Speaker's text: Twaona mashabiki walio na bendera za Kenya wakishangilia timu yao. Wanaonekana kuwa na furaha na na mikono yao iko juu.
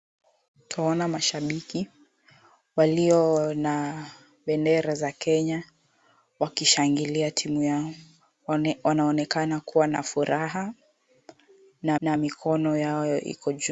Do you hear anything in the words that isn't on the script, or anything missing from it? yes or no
no